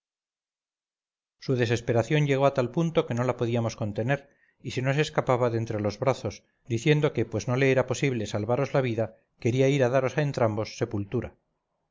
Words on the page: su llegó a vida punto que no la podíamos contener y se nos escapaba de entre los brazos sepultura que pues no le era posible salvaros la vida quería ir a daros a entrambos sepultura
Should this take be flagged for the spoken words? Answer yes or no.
yes